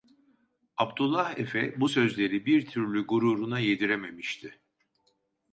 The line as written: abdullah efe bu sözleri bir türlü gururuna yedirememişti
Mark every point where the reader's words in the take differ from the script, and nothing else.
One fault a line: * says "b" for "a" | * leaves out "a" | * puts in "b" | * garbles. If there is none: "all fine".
all fine